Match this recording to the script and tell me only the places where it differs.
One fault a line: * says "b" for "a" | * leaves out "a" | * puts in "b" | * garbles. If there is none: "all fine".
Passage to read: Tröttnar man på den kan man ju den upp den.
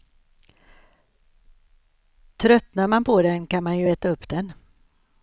* says "äta" for "den"